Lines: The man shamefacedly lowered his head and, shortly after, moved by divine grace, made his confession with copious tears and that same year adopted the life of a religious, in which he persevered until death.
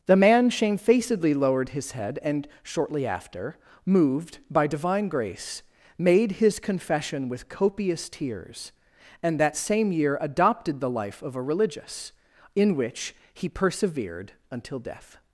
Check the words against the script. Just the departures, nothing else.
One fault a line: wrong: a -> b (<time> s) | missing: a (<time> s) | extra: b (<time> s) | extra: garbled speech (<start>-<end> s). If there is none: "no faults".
no faults